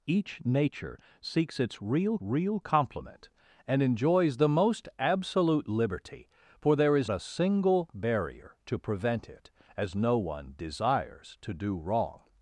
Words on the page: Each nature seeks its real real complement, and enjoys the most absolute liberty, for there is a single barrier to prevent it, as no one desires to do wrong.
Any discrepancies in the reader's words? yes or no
no